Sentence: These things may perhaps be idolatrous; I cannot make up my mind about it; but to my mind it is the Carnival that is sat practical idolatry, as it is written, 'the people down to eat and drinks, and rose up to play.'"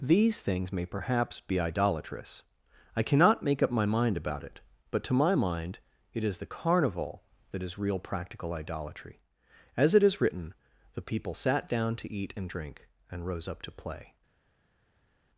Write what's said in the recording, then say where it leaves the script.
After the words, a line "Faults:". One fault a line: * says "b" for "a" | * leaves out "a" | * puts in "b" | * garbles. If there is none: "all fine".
These things may perhaps be idolatrous; I cannot make up my mind about it; but to my mind it is the Carnival that is real practical idolatry, as it is written, 'the people sat down to eat and drink, and rose up to play.'"
Faults:
* says "real" for "sat"
* puts in "sat"
* says "drink" for "drinks"